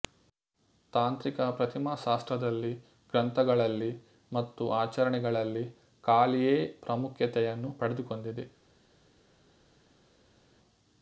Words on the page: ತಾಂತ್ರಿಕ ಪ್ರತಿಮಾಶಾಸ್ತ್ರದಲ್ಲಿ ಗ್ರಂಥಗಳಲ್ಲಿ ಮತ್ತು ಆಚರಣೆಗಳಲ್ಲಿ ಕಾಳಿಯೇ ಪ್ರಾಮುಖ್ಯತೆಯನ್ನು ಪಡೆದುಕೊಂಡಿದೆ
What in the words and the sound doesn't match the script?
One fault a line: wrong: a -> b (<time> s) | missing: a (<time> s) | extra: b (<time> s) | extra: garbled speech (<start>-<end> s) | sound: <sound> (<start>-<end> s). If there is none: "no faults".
no faults